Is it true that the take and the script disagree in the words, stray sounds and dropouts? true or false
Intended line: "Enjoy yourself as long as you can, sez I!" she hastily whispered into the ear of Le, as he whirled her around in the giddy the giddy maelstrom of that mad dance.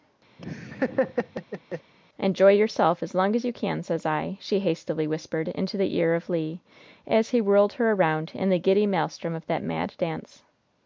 true